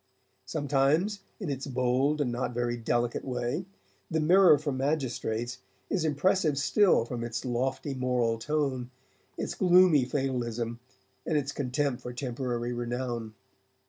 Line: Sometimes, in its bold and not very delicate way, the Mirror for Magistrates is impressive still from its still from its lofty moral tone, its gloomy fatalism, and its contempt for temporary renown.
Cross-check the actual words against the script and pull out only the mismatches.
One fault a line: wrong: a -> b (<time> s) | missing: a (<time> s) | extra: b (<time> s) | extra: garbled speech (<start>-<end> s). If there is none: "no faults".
missing: still from its (7.5 s)